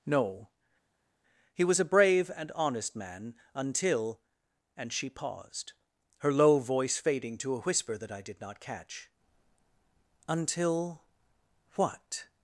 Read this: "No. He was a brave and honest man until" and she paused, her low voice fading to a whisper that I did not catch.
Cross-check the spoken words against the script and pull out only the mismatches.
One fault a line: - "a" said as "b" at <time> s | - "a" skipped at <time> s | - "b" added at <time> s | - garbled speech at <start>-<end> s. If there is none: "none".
- "Until what" added at 10.3 s